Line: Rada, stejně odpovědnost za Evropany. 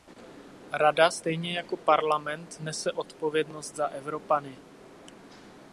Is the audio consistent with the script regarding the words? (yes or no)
no